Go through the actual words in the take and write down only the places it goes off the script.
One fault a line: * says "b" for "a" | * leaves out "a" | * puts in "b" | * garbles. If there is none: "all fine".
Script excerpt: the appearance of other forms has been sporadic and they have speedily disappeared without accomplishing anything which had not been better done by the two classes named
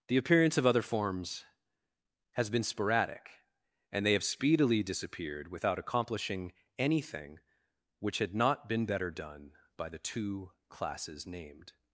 all fine